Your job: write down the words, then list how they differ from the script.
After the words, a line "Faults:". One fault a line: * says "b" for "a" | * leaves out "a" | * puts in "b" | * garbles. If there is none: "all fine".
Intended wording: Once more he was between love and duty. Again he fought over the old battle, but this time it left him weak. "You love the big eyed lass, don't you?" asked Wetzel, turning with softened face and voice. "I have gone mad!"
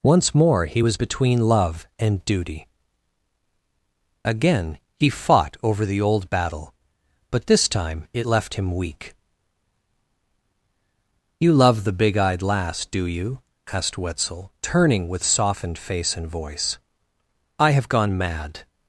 Once more he was between love and duty. Again he fought over the old battle, but this time it left him weak. "You love the big eyed lass, do you?" asked Wetzel, turning with softened face and voice. "I have gone mad!"
Faults:
* says "do" for "don't"